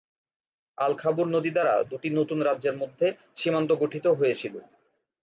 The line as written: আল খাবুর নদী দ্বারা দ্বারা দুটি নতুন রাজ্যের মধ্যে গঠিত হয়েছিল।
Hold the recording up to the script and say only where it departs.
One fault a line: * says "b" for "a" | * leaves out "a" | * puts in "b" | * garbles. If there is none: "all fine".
* leaves out "দ্বারা"
* puts in "সীমান্ত"